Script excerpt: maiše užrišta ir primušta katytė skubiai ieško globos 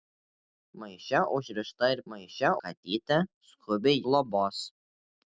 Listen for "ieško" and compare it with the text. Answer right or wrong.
wrong